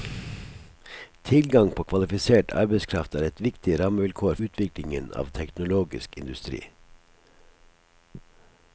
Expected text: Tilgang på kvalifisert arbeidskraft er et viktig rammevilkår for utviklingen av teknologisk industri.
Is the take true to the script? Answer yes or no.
no